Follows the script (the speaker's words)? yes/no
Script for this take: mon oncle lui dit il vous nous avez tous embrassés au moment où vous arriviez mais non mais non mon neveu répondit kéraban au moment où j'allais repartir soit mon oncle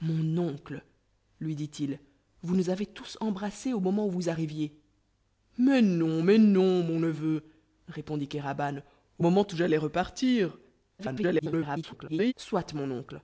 no